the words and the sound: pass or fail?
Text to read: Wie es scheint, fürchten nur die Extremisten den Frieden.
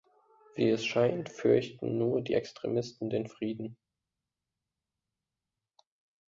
pass